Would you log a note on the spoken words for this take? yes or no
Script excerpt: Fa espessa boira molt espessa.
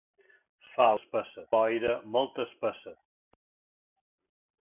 no